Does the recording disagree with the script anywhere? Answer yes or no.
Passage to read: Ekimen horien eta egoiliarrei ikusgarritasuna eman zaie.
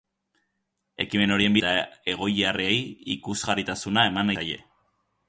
no